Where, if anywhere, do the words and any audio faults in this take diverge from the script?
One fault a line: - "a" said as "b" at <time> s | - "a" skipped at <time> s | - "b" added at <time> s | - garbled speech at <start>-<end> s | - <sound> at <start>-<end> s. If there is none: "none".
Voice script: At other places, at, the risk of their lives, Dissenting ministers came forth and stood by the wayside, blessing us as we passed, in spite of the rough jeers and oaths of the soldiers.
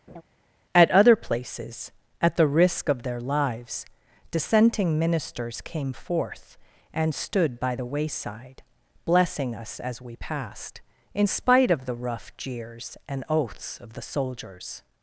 - laugh at 0.1-0.2 s